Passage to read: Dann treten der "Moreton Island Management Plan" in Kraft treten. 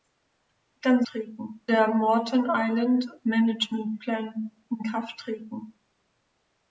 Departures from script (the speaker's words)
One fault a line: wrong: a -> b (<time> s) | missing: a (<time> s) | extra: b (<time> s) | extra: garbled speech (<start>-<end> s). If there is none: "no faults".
no faults